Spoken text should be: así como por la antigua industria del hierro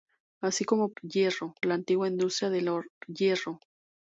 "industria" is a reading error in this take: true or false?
false